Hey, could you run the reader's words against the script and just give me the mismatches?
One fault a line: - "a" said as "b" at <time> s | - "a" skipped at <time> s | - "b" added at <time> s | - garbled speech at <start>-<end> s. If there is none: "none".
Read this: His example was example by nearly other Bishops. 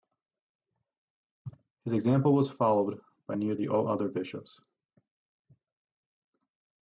- "example" said as "followed" at 2.5 s
- "all" added at 3.7 s